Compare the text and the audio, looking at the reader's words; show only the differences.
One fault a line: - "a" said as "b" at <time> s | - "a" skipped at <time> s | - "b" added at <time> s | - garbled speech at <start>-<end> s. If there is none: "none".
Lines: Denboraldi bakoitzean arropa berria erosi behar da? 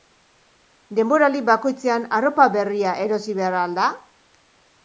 - "al" added at 3.6 s